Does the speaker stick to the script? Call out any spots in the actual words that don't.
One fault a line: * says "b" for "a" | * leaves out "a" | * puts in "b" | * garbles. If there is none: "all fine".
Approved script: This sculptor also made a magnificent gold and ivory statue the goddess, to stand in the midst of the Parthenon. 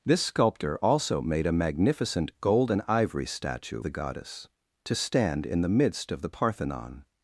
all fine